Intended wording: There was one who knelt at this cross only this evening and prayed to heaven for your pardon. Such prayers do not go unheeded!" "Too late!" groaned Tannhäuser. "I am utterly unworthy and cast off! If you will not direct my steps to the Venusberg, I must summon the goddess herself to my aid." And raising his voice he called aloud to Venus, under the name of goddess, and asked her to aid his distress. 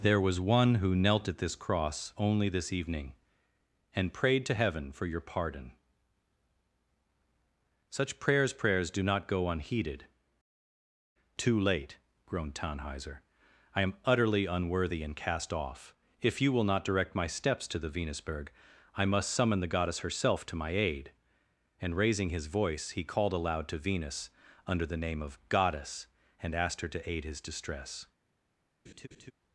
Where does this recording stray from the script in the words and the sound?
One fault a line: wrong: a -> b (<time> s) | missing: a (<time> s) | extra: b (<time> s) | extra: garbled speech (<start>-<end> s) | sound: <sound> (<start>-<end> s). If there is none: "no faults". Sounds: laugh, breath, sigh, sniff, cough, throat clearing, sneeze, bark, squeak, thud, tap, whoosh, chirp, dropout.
extra: prayers (8.5 s)
sound: laugh (28.9-29.3 s)